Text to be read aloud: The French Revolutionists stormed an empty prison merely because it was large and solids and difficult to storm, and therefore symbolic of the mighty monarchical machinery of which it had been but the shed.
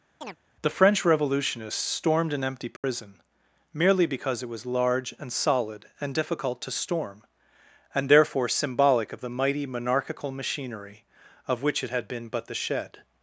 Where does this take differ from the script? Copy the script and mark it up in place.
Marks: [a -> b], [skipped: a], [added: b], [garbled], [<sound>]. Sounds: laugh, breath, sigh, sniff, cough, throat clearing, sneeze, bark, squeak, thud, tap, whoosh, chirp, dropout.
[chirp] The French Revolutionists stormed an empty prison [dropout] merely because it was large and [solids -> solid] and difficult to storm, and therefore symbolic of the mighty monarchical machinery of which it had been but the shed.